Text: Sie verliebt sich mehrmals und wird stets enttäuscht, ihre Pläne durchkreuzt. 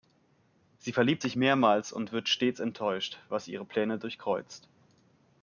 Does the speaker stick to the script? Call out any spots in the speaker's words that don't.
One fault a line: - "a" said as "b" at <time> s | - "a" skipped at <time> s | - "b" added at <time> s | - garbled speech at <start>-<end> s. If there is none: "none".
- "was" added at 3.3 s